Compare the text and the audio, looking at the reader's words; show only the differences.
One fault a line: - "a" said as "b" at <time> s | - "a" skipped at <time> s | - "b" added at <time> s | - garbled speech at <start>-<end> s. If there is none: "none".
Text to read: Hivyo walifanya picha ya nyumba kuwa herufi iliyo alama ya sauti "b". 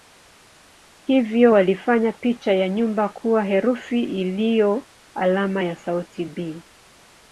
none